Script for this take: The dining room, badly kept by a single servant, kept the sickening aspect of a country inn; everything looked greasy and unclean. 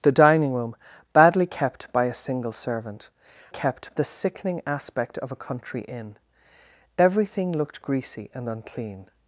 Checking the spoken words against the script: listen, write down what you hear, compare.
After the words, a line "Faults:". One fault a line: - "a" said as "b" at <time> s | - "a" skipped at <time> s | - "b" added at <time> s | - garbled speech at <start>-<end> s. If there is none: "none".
The dining room, badly kept by a single servant, kept the sickening aspect of a country inn; everything looked greasy and unclean.
Faults:
none